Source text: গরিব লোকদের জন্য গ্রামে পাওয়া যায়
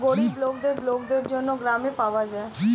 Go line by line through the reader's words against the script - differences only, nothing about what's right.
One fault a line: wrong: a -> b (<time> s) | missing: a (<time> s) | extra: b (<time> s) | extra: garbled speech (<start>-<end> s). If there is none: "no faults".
extra: লোকদের (0.9 s)